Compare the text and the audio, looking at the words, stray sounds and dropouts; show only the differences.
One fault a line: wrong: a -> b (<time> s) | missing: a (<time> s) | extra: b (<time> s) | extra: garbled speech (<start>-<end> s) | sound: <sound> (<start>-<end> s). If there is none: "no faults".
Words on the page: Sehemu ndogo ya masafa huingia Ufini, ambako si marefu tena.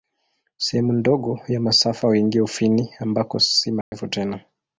sound: dropout (3.8-3.9 s)